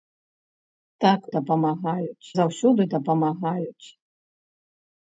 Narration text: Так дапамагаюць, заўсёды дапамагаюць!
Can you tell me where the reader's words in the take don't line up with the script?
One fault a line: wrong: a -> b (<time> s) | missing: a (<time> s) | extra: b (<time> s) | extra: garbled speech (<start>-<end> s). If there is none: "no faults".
no faults